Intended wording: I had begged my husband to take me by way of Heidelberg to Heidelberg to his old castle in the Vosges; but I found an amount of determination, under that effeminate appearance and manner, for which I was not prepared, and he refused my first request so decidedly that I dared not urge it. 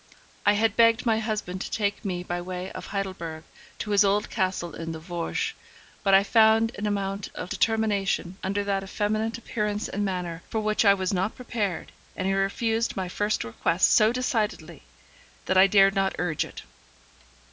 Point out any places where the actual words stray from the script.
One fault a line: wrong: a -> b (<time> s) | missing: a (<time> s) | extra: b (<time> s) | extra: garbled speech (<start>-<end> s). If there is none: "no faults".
missing: Heidelberg to (3.9 s)